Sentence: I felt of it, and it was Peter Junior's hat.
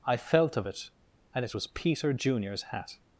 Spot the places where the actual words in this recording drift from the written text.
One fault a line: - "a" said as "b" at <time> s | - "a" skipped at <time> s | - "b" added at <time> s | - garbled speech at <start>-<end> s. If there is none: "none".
none